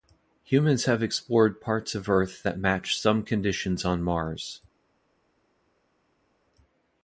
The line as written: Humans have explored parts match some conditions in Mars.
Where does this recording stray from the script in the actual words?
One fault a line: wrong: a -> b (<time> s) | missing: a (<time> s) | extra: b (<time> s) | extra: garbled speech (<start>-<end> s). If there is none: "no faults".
extra: of Earth that (1.9 s)
wrong: in -> on (3.9 s)